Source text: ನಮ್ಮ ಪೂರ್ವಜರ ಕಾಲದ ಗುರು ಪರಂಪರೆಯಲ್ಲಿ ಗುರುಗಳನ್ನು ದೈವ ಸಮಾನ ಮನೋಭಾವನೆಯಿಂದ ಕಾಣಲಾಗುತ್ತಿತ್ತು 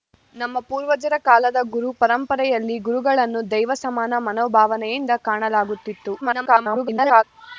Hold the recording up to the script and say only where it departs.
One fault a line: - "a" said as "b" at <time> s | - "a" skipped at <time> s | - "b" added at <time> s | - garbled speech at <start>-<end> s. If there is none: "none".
- garbled speech at 6.2-7.2 s